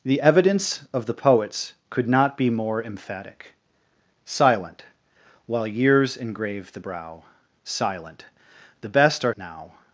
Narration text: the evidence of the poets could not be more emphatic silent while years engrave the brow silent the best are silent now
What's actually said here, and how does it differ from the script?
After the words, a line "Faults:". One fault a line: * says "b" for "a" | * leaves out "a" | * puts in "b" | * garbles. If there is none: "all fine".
the evidence of the poets could not be more emphatic silent while years engrave the brow silent the best are now
Faults:
* leaves out "silent"